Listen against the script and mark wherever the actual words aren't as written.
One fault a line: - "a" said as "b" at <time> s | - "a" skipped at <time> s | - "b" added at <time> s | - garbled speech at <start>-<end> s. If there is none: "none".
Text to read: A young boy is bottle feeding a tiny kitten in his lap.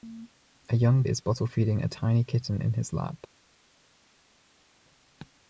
- "boy" skipped at 1.0 s